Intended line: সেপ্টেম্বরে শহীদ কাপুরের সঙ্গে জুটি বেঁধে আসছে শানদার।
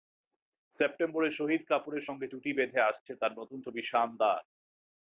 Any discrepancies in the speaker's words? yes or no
yes